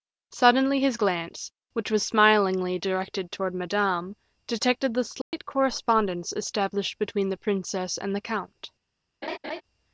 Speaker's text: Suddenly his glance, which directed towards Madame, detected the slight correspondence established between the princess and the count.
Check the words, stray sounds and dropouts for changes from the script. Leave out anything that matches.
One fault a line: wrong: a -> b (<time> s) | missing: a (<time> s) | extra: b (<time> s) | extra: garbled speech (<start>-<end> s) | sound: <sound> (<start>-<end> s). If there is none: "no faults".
extra: was smilingly (1.9 s)
sound: dropout (5.2-5.3 s)
sound: laugh (9.2-9.6 s)